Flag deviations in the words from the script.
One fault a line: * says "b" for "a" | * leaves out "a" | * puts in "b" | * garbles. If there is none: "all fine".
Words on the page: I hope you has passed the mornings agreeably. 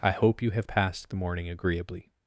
* says "have" for "has"
* says "morning" for "mornings"